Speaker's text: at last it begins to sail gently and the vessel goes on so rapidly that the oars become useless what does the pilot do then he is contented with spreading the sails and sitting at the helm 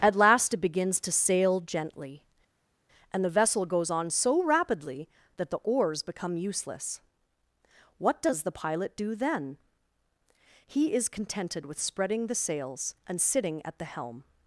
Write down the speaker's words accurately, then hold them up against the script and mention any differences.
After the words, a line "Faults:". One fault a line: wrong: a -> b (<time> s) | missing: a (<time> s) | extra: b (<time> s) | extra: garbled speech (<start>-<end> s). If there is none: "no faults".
at last it begins to sail gently and the vessel goes on so rapidly that the oars become useless what does the pilot do then he is contented with spreading the sails and sitting at the helm
Faults:
no faults